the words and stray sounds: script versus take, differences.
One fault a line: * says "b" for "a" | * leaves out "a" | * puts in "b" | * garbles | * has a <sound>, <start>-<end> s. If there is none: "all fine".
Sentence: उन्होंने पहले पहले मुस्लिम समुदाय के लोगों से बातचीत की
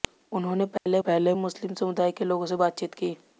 * has a dropout, 0.8-0.9 s